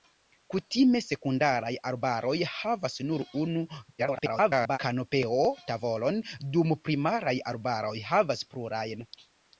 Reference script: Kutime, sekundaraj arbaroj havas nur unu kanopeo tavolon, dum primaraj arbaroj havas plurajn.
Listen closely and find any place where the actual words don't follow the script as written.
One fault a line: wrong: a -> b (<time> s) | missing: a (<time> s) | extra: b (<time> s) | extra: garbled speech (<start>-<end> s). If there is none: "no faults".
extra: garbled speech (4.0-4.8 s)